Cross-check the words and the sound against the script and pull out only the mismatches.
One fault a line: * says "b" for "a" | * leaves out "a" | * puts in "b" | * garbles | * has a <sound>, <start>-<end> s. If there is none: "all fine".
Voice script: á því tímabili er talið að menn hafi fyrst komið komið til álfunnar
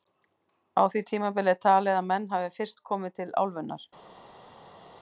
* leaves out "komið"